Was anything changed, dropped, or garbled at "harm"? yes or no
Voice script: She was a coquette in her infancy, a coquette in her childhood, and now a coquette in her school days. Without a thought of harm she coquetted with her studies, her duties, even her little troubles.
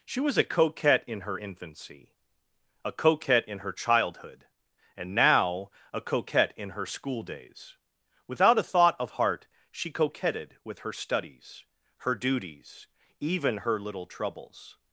yes